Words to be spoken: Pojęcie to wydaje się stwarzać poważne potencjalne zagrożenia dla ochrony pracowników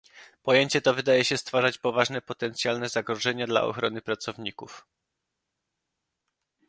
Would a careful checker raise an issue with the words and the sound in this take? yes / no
no